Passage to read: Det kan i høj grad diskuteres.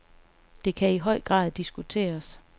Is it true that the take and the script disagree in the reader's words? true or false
false